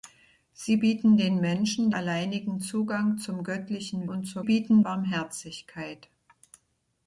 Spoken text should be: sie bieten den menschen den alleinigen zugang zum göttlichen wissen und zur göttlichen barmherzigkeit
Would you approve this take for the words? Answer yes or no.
no